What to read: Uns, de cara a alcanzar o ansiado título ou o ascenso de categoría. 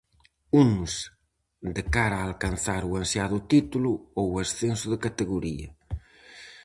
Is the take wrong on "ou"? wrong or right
right